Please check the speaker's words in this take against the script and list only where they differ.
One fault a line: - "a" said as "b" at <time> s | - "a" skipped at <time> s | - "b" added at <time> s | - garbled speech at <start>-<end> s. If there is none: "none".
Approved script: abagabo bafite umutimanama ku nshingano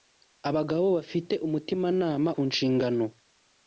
none